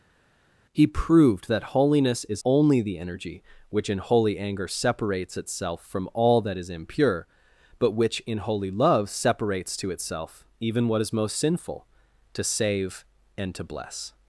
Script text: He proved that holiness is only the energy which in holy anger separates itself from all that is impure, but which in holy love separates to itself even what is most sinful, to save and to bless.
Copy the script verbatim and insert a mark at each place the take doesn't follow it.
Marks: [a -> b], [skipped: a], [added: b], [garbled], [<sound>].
He proved that holiness is only the energy which in holy anger separates itself from all that is impure, but which in holy love separates to itself even what is most sinful, to save and to bless.